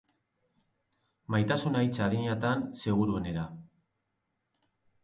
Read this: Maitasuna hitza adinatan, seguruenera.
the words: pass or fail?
pass